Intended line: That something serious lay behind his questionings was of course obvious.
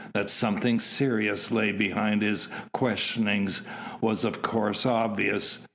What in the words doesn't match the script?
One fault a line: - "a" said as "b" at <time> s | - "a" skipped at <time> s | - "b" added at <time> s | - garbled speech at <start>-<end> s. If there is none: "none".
none